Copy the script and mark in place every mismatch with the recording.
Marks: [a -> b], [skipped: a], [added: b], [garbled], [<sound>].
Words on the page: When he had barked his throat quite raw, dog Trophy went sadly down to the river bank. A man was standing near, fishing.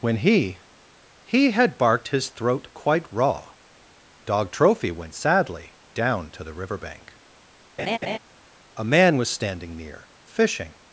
When he [added: he] had barked his throat quite raw, dog Trophy went sadly down to the river bank. [laugh] A man was standing near, fishing.